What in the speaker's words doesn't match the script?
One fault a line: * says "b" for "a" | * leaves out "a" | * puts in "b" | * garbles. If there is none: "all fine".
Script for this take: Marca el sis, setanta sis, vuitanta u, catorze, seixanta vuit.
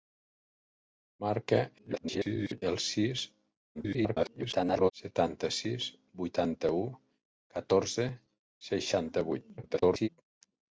* garbles
* garbles
* garbles